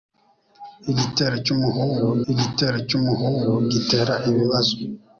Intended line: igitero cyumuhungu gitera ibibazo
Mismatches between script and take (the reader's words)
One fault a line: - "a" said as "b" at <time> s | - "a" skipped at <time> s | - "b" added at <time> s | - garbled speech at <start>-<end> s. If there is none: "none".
- "igitero cyumuhungu" added at 2.3 s